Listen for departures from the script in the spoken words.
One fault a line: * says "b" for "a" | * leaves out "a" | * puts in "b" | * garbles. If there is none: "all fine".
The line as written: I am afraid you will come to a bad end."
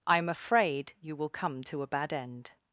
all fine